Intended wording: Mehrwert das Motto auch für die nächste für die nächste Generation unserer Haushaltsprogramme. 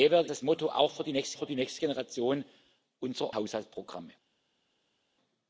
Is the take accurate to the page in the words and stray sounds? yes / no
yes